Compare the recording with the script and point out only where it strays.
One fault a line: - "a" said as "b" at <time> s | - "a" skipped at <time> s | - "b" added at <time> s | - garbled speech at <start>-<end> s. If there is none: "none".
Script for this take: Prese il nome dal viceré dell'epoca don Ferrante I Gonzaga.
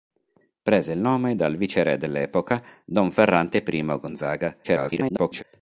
- garbled speech at 4.6-5.4 s